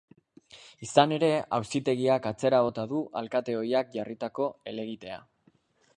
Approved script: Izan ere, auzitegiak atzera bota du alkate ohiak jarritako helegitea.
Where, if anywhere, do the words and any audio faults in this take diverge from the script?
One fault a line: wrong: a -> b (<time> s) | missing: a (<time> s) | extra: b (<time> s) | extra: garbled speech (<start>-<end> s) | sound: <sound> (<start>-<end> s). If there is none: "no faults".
no faults